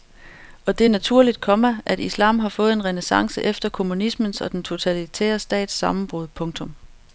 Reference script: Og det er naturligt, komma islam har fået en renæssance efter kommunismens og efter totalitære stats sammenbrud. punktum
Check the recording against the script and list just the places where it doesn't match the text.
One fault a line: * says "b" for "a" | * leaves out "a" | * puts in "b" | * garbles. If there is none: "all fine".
* puts in "at"
* says "den" for "efter"